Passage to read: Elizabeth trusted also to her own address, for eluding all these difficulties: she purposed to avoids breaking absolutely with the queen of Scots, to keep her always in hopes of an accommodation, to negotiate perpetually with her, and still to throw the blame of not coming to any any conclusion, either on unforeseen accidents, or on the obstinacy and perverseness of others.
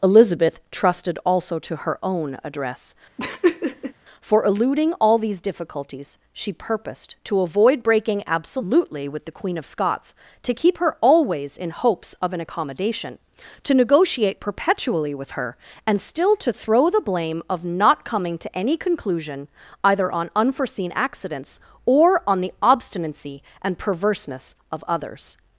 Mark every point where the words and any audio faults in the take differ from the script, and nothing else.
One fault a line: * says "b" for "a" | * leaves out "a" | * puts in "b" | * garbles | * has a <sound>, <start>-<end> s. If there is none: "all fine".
* has a laugh, 3.2-3.9 s
* says "avoid" for "avoids"
* leaves out "any"